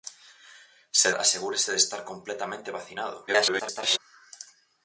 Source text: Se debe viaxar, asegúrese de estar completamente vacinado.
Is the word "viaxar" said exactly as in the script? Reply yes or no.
no